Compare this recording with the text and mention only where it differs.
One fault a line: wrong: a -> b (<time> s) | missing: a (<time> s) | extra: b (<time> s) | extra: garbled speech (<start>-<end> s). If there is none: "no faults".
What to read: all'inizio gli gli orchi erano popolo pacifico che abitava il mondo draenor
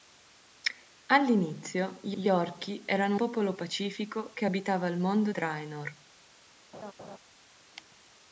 no faults